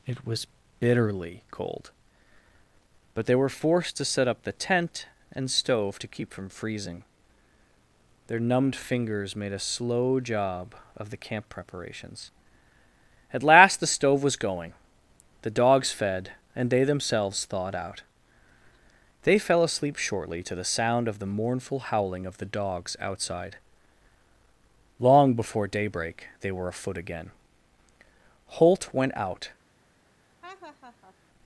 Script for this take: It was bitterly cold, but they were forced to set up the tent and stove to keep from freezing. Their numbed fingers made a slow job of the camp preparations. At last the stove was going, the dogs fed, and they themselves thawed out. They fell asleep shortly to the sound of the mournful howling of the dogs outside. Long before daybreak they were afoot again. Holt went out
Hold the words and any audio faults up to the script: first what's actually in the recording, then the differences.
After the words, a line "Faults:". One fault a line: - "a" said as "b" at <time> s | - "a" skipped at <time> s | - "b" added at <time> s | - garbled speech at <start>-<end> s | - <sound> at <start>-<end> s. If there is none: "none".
It was bitterly cold, but they were forced to set up the tent and stove to keep from freezing. Their numbed fingers made a slow job of the camp preparations. At last the stove was going, the dogs fed, and they themselves thawed out. They fell asleep shortly to the sound of the mournful howling of the dogs outside. Long before daybreak they were afoot again. Holt went out
Faults:
- laugh at 30.4-31.2 s